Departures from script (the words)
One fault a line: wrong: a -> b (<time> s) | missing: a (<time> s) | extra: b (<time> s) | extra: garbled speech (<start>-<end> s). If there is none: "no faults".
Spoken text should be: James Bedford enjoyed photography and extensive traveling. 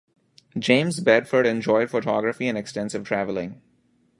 no faults